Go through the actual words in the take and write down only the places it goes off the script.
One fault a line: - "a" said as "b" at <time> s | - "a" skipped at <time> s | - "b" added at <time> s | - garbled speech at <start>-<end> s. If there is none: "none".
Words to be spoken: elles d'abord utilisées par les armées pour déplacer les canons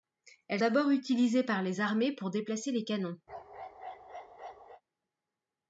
none